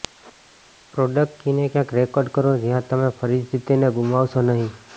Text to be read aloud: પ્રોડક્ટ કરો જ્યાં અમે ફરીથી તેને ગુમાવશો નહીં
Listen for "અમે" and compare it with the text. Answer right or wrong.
wrong